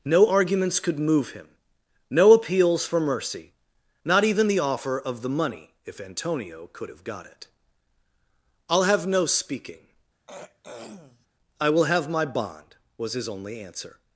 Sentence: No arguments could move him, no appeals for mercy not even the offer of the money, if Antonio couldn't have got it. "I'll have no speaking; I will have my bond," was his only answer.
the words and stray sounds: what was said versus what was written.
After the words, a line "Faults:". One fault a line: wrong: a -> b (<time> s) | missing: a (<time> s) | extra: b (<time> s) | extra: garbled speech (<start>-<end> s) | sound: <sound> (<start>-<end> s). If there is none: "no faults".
No arguments could move him, no appeals for mercy not even the offer of the money, if Antonio could have got it. "I'll have no speaking; I will have my bond," was his only answer.
Faults:
wrong: couldn't -> could (6.7 s)
sound: throat clearing (10.3-11.3 s)